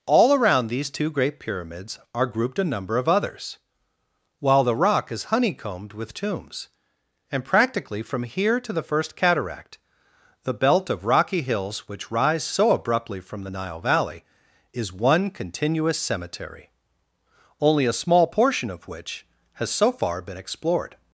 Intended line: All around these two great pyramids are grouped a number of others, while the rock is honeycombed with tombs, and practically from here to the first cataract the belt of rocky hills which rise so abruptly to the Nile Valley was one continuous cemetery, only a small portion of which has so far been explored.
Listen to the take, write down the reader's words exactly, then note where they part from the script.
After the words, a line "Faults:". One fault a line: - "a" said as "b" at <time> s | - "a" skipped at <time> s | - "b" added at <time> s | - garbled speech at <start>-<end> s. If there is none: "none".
All around these two great pyramids are grouped a number of others, while the rock is honeycombed with tombs, and practically from here to the first cataract the belt of rocky hills which rise so abruptly from the Nile Valley is one continuous cemetery, only a small portion of which has so far been explored.
Faults:
- "to" said as "from" at 13.2 s
- "was" said as "is" at 14.7 s